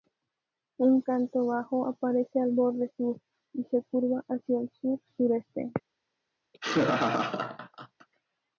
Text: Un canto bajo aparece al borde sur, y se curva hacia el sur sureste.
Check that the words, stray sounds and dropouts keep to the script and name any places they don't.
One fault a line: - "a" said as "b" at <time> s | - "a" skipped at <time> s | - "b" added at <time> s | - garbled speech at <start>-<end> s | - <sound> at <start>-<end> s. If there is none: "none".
- laugh at 6.5-8.1 s